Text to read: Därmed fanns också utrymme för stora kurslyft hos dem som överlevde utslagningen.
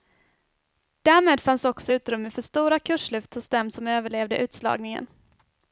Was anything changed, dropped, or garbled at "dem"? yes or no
no